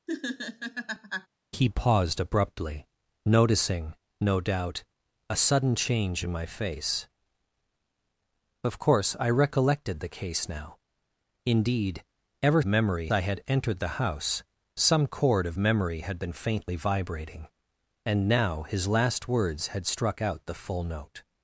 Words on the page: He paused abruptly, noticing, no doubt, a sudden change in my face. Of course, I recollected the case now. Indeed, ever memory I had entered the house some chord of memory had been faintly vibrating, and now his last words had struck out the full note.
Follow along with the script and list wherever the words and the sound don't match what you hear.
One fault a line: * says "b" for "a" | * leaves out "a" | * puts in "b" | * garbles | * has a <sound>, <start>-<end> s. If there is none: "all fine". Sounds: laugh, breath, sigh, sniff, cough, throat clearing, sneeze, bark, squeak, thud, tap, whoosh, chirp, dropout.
* has a laugh, 0.1-1.3 s